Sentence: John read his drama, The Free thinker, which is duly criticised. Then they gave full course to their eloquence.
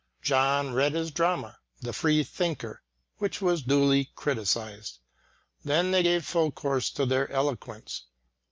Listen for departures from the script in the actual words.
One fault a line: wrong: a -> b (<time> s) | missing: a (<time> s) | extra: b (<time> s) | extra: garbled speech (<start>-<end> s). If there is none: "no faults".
wrong: is -> was (3.4 s)